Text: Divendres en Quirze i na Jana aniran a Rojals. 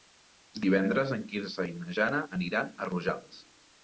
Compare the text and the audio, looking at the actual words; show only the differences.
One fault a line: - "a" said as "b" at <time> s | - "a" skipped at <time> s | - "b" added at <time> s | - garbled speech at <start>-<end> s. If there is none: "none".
none